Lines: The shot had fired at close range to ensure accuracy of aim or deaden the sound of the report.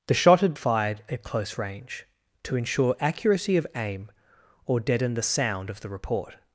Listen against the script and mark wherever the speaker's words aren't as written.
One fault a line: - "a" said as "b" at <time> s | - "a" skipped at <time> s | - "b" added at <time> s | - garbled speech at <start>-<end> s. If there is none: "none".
none